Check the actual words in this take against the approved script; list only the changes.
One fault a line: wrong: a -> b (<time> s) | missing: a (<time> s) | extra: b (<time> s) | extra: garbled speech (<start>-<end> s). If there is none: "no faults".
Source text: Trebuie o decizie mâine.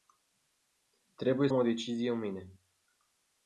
no faults